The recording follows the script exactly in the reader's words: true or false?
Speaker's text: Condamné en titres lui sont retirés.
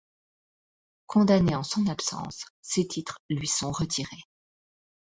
false